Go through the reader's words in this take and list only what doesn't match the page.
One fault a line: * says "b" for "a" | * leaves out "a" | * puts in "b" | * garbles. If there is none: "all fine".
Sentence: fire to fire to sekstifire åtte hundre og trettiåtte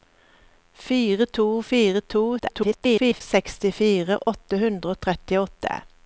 * garbles